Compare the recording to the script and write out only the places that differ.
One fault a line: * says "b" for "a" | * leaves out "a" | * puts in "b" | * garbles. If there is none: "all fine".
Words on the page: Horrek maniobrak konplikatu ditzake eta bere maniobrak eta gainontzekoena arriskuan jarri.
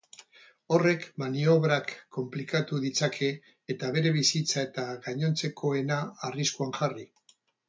* says "bizitza" for "maniobrak"